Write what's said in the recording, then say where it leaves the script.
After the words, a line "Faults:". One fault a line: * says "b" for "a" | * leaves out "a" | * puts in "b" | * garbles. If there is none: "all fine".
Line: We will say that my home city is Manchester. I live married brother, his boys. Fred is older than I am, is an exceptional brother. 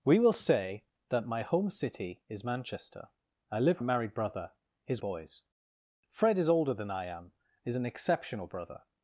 We will say that my home city is Manchester. I live married brother, his boys. Fred is older than I am, is an exceptional brother.
Faults:
all fine